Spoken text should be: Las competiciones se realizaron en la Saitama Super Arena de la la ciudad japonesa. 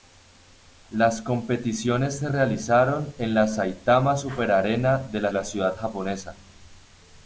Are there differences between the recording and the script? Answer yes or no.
no